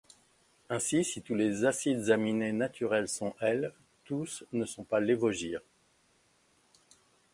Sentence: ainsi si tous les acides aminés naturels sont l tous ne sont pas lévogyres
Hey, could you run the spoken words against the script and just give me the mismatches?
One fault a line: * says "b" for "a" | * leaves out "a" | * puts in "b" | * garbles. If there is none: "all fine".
all fine